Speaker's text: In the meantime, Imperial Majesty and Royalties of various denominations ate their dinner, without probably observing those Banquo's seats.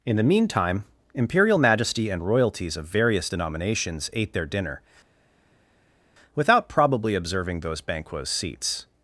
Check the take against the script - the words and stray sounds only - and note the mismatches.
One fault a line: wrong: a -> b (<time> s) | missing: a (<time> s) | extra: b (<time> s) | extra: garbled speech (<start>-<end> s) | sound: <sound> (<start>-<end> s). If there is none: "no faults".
no faults